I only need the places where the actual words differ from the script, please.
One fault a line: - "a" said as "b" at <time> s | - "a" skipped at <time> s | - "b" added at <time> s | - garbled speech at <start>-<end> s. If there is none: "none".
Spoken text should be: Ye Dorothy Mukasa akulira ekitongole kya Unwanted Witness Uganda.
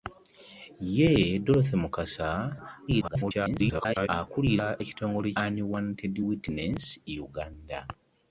- garbled speech at 2.9-4.1 s
- "kya" skipped at 5.3 s